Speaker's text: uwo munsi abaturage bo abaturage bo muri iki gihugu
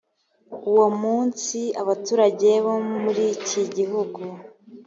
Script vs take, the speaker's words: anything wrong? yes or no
yes